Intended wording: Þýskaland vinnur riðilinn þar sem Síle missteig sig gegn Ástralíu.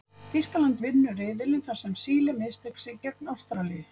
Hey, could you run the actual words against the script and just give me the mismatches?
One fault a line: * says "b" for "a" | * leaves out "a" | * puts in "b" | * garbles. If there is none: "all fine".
all fine